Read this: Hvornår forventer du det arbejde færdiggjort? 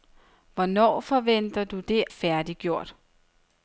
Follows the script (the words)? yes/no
no